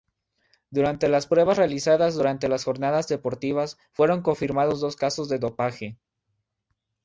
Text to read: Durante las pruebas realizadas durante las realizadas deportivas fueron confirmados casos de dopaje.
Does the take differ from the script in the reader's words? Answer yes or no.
yes